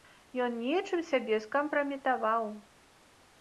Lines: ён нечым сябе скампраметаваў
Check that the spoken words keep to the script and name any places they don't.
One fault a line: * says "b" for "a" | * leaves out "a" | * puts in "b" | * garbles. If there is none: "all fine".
all fine